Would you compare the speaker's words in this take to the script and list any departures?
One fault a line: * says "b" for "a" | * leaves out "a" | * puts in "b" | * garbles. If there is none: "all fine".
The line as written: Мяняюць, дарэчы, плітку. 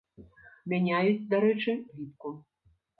all fine